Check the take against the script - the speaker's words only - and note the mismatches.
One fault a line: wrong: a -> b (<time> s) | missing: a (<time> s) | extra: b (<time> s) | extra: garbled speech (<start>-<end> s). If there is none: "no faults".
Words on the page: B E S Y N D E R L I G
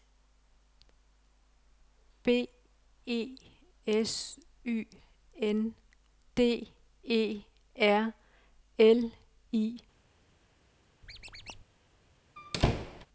no faults